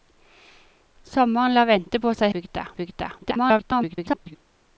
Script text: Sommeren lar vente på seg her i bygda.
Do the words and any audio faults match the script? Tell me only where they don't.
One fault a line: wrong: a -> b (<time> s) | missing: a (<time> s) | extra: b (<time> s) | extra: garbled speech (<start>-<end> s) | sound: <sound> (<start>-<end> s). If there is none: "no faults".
wrong: her -> bygda (2.3 s)
extra: garbled speech (3.2-4.4 s)